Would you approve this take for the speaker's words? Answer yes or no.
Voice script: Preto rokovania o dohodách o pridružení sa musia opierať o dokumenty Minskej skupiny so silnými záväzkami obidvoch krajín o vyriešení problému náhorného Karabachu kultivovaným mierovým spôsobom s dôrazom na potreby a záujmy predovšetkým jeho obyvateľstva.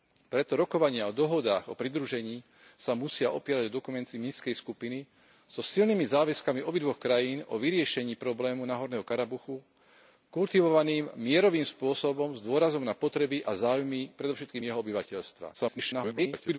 no